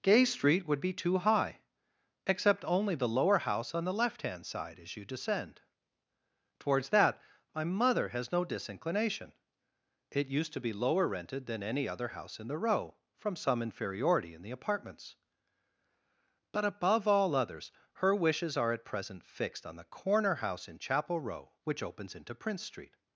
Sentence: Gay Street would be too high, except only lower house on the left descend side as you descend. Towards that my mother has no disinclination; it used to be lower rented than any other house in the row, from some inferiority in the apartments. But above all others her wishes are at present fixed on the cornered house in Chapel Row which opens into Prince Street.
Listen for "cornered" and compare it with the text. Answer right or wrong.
wrong